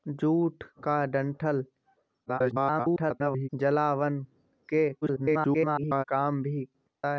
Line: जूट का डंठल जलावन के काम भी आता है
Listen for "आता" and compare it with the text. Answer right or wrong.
wrong